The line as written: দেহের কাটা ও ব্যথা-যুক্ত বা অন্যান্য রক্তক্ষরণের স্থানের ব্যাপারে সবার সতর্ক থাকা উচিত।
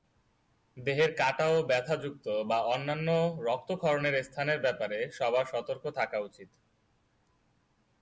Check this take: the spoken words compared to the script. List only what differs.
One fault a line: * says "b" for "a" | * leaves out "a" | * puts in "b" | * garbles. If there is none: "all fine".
all fine